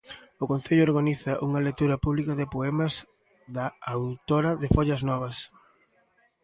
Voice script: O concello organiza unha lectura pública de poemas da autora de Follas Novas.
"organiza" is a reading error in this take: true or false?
false